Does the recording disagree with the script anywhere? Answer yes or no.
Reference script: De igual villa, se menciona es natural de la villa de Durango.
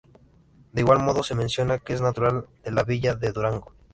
yes